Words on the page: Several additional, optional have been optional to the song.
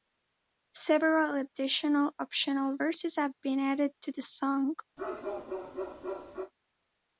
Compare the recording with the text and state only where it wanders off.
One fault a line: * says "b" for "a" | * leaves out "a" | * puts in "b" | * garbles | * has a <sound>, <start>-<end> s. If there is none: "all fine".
* puts in "verses"
* says "added" for "optional"
* has a bark, 5.0-6.5 s